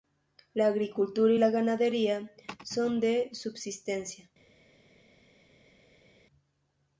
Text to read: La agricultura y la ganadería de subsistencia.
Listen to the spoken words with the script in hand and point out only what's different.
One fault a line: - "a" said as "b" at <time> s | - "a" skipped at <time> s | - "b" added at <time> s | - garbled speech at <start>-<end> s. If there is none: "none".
- "son" added at 2.6 s